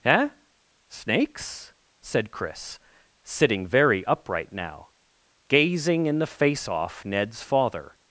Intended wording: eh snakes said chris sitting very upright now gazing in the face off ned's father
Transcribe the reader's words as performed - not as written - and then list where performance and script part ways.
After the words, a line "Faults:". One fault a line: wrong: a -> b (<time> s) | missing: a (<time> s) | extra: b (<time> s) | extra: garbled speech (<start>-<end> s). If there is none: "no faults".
eh snakes said chris sitting very upright now gazing in the face off ned's father
Faults:
no faults